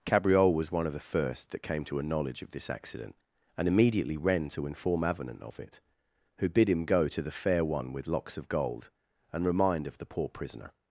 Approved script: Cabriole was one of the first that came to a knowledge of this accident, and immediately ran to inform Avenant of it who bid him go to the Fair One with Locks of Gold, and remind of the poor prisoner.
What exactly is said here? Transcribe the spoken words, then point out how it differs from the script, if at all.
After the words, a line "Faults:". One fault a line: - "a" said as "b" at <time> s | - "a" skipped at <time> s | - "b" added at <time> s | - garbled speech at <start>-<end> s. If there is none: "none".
Cabriole was one of the first that came to a knowledge of this accident, and immediately ran to inform Avenant of it who bid him go to the Fair One with Locks of Gold, and remind of the poor prisoner.
Faults:
none